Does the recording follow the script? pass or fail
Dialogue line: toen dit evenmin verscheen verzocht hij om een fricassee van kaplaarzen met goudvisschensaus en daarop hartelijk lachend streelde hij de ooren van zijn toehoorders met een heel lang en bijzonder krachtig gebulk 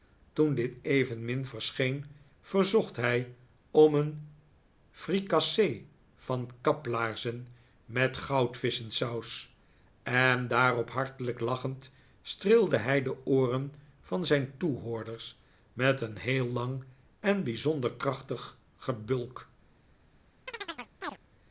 pass